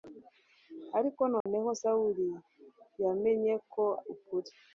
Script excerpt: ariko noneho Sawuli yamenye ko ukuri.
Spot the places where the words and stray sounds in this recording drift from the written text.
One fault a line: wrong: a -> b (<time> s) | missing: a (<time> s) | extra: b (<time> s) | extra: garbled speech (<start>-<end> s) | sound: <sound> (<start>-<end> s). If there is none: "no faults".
sound: dropout (1.4-1.5 s)